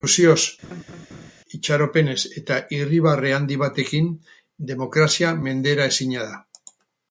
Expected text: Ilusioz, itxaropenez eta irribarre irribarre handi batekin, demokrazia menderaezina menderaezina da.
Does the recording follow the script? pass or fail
fail